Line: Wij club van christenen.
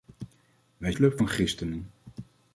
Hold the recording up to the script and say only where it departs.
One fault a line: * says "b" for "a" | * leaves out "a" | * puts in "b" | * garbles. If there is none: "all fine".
all fine